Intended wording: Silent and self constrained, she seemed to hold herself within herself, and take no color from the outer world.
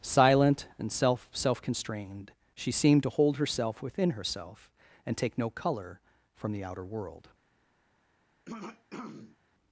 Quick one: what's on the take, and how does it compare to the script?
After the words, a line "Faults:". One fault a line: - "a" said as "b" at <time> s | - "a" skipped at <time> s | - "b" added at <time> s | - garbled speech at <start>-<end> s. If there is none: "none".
Silent and self self constrained, she seemed to hold herself within herself, and take no color from the outer world.
Faults:
- "self" added at 1.3 s